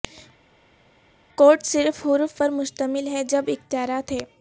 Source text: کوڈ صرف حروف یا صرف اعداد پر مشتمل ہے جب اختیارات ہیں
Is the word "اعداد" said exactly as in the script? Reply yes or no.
no